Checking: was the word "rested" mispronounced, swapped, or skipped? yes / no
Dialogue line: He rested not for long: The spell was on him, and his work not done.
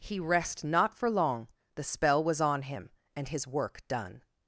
yes